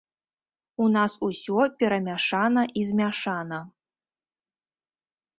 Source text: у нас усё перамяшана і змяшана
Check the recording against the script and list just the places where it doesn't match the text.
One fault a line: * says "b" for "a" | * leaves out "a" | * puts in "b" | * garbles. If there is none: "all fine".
all fine